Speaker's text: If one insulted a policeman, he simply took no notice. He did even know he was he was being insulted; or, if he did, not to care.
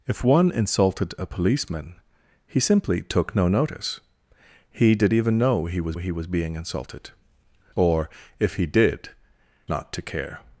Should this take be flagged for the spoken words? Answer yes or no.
no